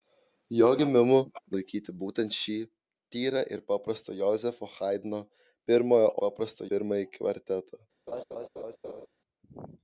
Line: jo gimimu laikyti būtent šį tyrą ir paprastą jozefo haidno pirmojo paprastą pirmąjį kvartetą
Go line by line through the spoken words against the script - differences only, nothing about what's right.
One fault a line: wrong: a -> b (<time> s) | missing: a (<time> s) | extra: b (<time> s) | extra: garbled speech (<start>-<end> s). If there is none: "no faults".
no faults